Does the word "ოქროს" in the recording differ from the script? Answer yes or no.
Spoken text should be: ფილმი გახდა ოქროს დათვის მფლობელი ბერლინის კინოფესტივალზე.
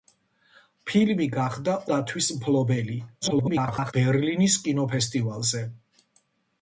yes